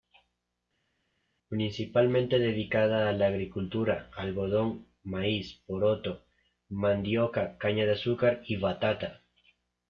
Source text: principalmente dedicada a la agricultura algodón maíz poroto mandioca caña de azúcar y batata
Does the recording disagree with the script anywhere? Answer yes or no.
no